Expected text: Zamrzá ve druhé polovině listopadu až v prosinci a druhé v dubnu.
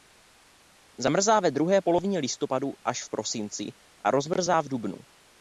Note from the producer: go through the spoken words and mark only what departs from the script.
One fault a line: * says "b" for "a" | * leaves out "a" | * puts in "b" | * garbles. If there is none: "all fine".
* says "rozmrzá" for "druhé"